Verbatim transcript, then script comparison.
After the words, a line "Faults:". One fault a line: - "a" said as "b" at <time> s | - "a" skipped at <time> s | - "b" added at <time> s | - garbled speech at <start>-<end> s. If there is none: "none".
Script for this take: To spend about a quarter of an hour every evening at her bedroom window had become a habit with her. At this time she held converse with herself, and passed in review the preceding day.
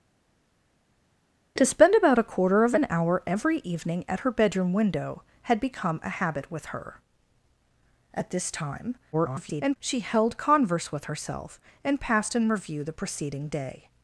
To spend about a quarter of an hour every evening at her bedroom window had become a habit with her. At this time [garbled] she held converse with herself, and passed in review the preceding day.
Faults:
- garbled speech at 9.1-9.8 s